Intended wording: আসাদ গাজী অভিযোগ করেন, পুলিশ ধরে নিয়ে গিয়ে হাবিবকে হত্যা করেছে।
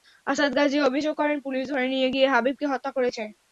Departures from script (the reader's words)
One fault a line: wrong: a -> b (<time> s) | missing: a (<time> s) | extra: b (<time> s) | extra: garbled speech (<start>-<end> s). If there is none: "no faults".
no faults